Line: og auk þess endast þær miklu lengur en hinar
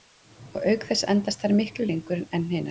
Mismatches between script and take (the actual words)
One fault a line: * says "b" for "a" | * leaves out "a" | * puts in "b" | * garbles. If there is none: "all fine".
all fine